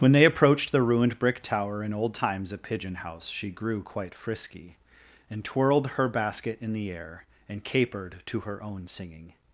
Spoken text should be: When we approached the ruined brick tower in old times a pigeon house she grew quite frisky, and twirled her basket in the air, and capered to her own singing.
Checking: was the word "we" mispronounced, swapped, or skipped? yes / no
yes